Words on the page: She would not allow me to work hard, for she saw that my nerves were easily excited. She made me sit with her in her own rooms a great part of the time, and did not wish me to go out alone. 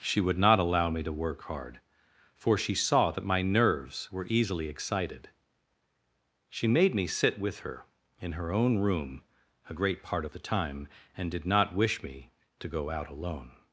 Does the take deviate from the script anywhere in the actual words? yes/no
yes